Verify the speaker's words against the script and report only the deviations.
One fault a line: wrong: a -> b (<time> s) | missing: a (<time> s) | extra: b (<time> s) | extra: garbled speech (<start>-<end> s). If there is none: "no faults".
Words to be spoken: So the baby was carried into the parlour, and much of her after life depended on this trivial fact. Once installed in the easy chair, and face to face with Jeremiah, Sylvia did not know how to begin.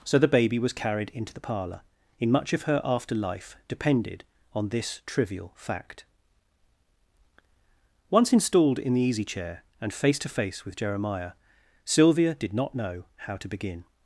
wrong: and -> in (2.2 s)